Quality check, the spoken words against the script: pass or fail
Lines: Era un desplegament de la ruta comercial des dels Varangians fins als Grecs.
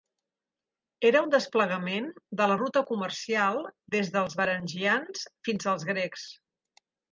pass